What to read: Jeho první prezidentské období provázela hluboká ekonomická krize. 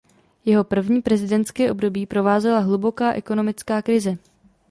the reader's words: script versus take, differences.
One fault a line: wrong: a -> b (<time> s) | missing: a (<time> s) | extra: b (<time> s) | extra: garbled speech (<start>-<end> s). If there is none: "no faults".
no faults